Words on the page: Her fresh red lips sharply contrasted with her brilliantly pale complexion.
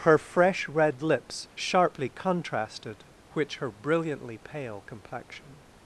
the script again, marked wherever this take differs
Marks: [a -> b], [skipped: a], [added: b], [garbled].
Her fresh red lips sharply contrasted [with -> which] her brilliantly pale complexion.